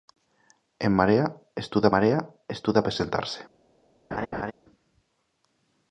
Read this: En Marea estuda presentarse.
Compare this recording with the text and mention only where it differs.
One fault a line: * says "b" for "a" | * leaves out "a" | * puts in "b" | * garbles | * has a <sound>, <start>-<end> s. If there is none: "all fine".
* puts in "Marea estuda"
* has a laugh, 4.1-4.5 s